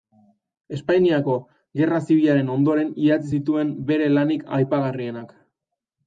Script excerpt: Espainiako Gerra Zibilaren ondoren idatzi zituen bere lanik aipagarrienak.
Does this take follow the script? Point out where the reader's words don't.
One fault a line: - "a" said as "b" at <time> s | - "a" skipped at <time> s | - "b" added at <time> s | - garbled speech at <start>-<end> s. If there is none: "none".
none